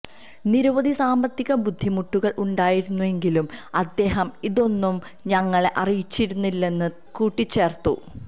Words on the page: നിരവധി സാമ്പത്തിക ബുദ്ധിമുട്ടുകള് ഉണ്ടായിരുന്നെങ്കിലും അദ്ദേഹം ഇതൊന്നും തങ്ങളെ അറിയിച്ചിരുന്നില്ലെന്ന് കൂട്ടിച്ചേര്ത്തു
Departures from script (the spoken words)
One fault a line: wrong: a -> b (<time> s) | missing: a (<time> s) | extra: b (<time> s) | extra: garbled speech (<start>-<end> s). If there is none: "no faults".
no faults